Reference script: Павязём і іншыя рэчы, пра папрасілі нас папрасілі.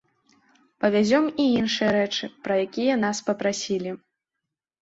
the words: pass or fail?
fail